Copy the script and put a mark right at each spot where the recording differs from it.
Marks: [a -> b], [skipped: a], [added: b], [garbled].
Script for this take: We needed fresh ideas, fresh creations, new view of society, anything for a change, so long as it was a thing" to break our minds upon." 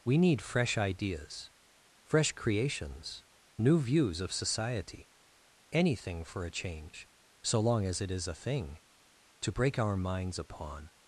We [needed -> need] fresh ideas, fresh creations, new [view -> views] of society, anything for a change, so long as it [was -> is] a thing" to break our minds upon."